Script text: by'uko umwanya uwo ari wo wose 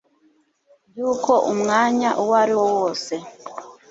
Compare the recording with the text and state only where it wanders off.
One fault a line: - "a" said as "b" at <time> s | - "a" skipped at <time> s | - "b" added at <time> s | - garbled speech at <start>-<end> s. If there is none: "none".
none